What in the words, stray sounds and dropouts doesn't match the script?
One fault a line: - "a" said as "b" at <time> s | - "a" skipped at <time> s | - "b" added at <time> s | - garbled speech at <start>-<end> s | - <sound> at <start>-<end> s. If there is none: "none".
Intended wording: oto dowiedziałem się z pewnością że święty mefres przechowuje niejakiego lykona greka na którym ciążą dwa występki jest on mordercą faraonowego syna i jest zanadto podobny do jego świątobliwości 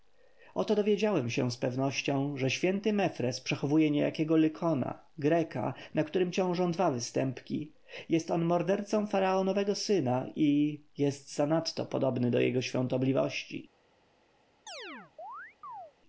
- chirp at 14.7-15.9 s